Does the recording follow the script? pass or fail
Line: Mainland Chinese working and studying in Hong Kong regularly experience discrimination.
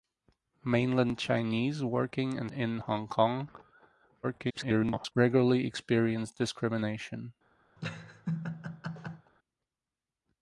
fail